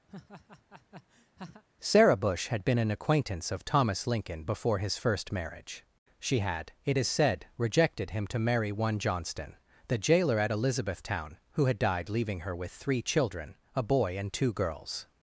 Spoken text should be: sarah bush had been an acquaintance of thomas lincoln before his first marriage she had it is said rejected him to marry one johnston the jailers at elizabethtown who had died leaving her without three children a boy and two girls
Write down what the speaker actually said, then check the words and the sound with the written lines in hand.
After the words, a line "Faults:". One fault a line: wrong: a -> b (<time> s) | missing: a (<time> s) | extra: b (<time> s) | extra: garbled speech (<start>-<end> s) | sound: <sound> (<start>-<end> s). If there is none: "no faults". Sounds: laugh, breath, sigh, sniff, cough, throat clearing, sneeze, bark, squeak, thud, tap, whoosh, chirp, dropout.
sarah bush had been an acquaintance of thomas lincoln before his first marriage she had it is said rejected him to marry one johnston the jailer at elizabethtown who had died leaving her with three children a boy and two girls
Faults:
sound: laugh (0.1-1.6 s)
wrong: jailers -> jailer (10.0 s)
wrong: without -> with (12.5 s)